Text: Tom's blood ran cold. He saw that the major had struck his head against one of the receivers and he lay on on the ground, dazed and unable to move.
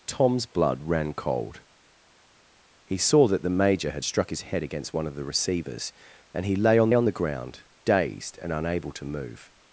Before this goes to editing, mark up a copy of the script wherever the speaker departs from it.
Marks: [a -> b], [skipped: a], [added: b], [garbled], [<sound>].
Tom's blood ran cold. He saw that the major had struck his head against one of the receivers and he lay on on the ground, dazed and unable to move.